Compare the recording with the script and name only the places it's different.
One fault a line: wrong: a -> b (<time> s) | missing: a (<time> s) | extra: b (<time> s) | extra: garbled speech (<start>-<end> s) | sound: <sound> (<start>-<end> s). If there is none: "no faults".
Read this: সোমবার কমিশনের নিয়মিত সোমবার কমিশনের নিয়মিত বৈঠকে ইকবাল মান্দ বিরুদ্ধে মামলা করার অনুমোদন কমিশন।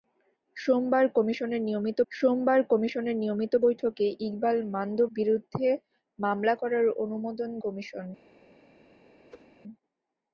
sound: whoosh (9.3-9.5 s)